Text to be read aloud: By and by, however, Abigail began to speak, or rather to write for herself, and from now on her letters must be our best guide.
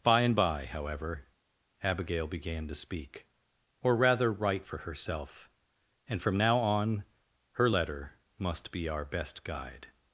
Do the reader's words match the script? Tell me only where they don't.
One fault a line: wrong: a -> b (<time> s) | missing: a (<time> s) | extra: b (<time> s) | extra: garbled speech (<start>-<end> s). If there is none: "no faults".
missing: to (4.3 s)
wrong: letters -> letter (7.7 s)